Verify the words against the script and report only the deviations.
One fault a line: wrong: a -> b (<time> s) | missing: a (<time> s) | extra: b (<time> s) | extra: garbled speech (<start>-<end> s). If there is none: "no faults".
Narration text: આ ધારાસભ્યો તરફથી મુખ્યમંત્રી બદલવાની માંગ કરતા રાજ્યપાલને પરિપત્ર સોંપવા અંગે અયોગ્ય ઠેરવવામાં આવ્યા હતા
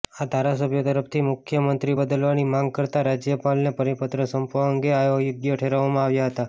no faults